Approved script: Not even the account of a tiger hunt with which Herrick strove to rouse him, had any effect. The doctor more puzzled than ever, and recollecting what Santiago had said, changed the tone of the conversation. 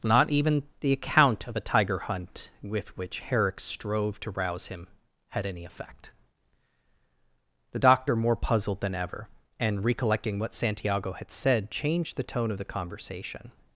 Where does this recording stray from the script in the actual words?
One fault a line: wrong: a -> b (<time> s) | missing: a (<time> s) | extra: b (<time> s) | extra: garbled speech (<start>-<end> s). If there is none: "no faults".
no faults